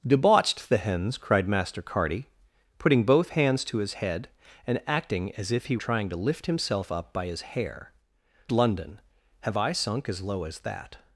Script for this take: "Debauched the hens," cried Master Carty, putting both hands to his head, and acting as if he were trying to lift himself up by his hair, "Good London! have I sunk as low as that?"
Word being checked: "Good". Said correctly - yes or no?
no